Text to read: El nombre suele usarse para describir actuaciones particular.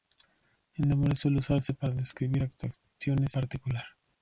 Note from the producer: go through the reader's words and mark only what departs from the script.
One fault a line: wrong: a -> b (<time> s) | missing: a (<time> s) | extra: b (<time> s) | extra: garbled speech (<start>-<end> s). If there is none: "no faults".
no faults